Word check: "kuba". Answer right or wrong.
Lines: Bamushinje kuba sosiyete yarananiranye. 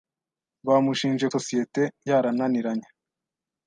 wrong